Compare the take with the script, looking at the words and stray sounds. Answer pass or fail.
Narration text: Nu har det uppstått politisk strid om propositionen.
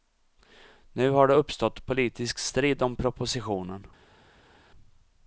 pass